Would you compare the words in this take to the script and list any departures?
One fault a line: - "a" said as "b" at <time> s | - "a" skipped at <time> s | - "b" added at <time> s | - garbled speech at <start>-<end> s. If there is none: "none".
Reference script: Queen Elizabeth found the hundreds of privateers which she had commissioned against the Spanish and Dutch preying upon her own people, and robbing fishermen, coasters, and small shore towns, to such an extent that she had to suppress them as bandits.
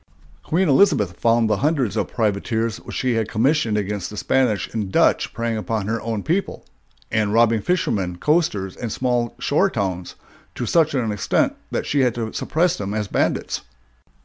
none